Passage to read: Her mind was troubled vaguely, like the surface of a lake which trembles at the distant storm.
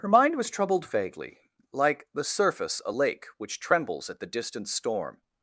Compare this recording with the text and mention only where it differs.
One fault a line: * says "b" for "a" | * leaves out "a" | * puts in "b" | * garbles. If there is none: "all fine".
* leaves out "of"